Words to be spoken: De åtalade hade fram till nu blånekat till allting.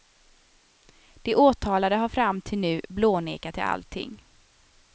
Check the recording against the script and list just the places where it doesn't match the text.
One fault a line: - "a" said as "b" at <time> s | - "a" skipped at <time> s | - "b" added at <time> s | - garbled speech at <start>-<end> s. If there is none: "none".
- "hade" said as "har" at 1.9 s